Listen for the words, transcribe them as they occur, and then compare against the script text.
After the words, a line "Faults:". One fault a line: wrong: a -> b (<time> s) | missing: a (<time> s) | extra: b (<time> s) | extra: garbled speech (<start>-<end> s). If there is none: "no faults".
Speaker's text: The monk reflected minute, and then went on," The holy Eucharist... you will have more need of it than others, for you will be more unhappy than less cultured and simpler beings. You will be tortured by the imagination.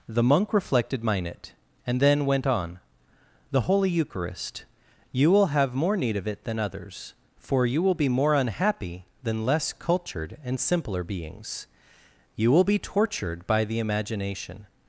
The monk reflected minute, and then went on," The holy Eucharist... you will have more need of it than others, for you will be more unhappy than less cultured and simpler beings. You will be tortured by the imagination.
Faults:
no faults